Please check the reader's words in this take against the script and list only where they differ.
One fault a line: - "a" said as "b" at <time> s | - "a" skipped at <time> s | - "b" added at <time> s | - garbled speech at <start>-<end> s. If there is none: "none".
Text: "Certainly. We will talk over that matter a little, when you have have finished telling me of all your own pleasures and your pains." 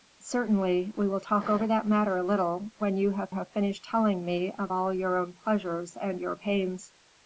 none